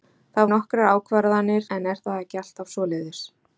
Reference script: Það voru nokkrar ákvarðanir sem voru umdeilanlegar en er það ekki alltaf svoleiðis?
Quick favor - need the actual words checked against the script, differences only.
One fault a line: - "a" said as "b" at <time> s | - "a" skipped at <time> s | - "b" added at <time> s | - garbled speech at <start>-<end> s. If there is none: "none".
- "voru" skipped at 0.5 s
- "sem voru umdeilanlegar" skipped at 1.7 s